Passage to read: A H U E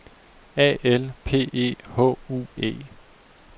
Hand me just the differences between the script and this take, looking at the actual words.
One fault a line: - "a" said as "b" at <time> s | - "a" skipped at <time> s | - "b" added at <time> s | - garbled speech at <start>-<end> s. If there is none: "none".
- "L P E" added at 0.8 s